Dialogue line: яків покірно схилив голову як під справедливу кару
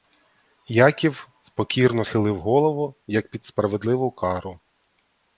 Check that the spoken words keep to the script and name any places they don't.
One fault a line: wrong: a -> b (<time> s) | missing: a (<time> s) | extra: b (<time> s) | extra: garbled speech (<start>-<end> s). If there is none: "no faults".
no faults